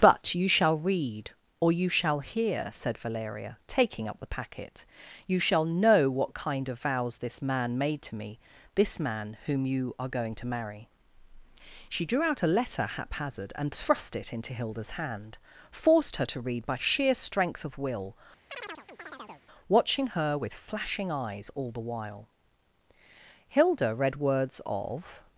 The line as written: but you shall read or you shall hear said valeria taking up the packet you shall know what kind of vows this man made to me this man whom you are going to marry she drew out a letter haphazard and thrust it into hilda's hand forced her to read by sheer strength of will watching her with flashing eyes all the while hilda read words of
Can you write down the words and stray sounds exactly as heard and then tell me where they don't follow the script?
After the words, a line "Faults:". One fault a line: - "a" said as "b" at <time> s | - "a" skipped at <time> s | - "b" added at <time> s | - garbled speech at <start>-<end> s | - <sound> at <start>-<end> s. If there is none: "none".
but you shall read or you shall hear said valeria taking up the packet you shall know what kind of vows this man made to me this man whom you are going to marry she drew out a letter haphazard and thrust it into hilda's hand forced her to read by sheer strength of will watching her with flashing eyes all the while hilda read words of
Faults:
- chirp at 18.5-19.5 s